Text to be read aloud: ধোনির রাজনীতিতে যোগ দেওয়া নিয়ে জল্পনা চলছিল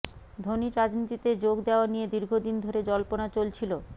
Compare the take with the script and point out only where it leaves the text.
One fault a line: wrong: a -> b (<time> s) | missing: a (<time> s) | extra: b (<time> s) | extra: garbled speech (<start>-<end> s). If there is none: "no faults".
extra: দীর্ঘদিন ধরে (2.1 s)